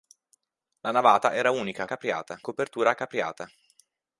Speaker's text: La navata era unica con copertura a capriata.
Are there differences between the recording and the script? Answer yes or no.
yes